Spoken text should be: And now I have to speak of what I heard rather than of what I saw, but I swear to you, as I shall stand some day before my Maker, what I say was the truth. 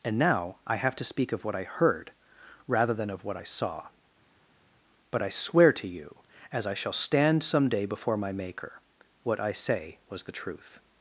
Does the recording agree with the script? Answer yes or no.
yes